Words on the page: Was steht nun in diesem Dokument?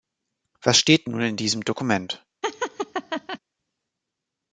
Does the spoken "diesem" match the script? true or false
true